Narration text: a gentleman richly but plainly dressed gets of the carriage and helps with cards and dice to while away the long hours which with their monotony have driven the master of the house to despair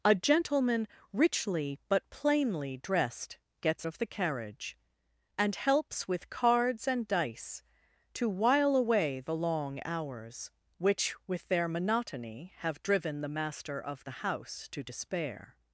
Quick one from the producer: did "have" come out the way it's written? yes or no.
yes